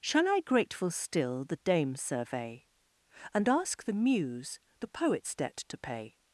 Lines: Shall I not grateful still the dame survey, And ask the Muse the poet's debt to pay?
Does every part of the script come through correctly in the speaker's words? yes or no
no